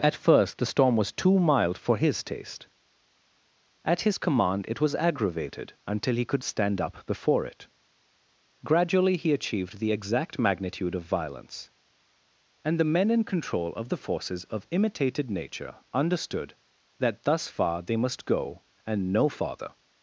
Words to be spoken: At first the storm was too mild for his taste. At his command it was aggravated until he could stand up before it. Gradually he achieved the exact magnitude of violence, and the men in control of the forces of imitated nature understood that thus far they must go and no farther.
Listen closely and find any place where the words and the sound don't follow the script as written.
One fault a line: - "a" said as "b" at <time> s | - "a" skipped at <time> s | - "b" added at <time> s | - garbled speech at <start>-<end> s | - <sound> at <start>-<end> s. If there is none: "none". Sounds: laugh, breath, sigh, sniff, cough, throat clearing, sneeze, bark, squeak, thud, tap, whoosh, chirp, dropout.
none